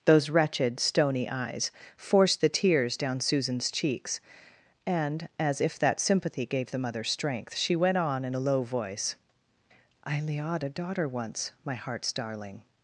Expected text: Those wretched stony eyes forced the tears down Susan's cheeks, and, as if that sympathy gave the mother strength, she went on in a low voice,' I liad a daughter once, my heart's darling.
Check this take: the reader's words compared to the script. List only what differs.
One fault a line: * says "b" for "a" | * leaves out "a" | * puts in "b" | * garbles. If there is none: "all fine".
all fine